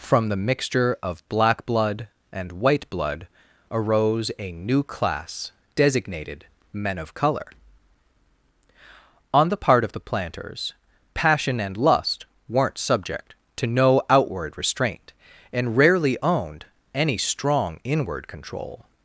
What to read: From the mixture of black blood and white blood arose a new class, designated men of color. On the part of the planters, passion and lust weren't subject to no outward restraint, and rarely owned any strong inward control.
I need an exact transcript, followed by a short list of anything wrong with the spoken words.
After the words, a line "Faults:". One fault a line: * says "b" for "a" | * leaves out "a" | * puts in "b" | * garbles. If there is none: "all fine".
From the mixture of black blood and white blood arose a new class, designated men of color. On the part of the planters, passion and lust weren't subject to no outward restraint, and rarely owned any strong inward control.
Faults:
all fine